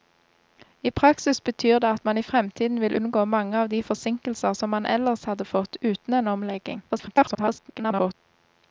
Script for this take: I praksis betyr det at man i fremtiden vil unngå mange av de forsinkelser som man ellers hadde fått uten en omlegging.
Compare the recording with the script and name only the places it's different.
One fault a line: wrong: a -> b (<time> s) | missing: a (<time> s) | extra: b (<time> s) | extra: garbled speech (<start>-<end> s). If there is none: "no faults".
extra: garbled speech (6.9-8.1 s)